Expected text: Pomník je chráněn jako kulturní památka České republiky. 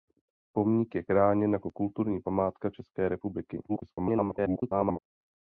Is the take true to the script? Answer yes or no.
no